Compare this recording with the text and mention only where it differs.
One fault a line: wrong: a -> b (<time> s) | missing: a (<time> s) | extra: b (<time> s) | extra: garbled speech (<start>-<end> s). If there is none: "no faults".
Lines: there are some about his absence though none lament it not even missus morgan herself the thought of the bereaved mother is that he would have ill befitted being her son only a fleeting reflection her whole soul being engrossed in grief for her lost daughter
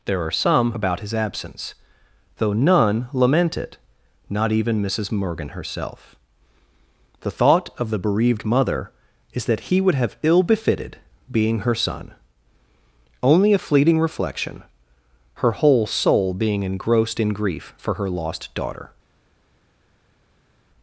no faults